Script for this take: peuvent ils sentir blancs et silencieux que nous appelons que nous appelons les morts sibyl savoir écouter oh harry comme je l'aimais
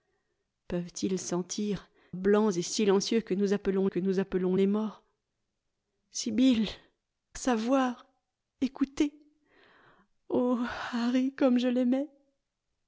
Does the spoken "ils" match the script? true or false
true